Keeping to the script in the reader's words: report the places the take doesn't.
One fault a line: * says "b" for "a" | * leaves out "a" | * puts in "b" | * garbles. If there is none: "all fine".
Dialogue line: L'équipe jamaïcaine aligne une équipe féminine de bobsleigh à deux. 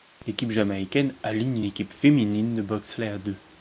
* leaves out "une"